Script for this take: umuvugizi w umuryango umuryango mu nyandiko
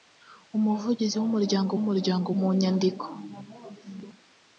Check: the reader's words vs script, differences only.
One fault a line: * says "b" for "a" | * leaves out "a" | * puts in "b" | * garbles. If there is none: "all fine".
all fine